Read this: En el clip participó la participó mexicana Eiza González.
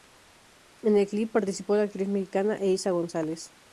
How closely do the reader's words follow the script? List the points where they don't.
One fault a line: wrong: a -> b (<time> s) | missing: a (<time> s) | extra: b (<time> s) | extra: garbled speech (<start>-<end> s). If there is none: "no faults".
wrong: participó -> actriz (1.8 s)